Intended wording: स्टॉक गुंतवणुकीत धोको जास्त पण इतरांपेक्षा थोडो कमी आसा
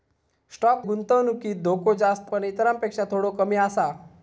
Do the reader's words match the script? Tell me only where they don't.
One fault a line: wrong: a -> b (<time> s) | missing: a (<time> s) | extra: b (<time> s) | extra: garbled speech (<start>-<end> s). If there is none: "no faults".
no faults